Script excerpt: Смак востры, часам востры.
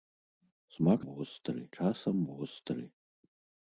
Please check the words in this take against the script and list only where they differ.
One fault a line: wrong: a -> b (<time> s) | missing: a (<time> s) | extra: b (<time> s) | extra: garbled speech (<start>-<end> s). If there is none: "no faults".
no faults